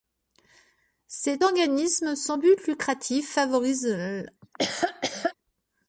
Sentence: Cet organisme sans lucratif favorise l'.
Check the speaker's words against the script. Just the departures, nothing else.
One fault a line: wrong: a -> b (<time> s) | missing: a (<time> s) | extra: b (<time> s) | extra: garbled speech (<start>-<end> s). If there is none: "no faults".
extra: but (2.4 s)